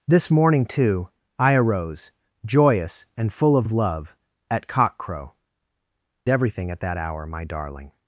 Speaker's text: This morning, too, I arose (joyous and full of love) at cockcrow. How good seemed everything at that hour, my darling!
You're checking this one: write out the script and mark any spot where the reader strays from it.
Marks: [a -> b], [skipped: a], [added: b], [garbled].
This morning, too, I arose (joyous and full of [added: of] love) at cockcrow. [skipped: How good seemed] everything at that hour, my darling!